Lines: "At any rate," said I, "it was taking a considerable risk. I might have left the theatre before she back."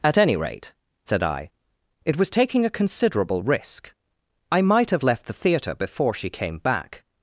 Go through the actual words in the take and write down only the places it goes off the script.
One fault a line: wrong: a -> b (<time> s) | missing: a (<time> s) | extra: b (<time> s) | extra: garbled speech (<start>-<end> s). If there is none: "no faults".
extra: came (6.3 s)